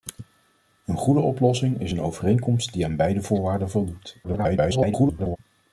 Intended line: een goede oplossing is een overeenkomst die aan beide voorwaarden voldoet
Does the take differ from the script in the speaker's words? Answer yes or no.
yes